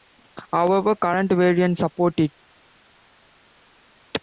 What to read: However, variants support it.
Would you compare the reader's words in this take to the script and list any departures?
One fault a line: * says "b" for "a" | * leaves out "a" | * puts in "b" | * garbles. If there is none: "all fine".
* puts in "current"